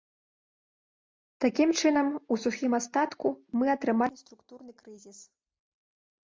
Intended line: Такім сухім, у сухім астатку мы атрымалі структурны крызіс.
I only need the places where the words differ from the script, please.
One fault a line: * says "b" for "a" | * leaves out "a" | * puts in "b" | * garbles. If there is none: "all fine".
* says "чынам" for "сухім"